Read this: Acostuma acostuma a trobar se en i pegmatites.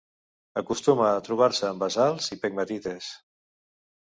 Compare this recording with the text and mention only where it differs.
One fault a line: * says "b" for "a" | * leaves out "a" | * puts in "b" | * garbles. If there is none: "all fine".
* leaves out "acostuma"
* puts in "basalts"